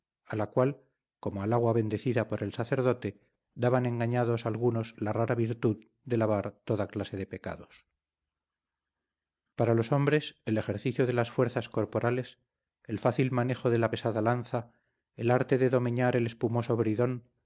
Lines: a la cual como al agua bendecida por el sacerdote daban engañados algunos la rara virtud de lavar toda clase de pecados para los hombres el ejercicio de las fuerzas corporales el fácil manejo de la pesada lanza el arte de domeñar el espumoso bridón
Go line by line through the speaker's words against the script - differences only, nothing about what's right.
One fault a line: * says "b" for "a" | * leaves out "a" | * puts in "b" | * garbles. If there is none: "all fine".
all fine